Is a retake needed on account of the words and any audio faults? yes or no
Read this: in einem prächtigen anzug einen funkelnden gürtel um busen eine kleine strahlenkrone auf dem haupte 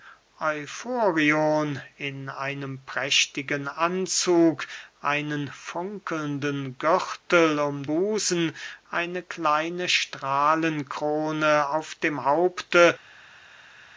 no